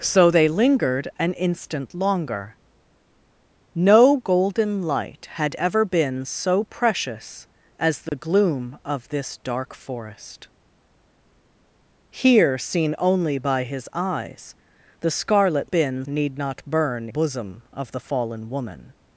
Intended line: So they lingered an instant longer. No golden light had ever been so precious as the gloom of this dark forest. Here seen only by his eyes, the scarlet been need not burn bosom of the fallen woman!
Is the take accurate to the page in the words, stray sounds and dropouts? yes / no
no